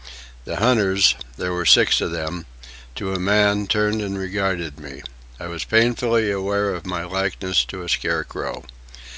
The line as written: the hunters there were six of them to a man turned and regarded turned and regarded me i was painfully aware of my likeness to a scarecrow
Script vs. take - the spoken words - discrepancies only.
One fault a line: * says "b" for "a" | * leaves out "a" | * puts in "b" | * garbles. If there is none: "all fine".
* leaves out "turned and regarded"